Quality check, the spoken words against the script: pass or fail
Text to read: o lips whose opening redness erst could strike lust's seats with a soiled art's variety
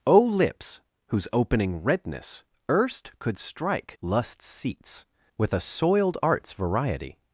pass